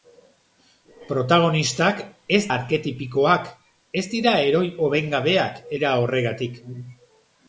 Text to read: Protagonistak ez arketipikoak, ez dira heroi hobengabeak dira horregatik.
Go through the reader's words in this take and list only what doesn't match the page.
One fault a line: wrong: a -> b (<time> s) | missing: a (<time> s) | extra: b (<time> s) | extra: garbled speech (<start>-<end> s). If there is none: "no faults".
no faults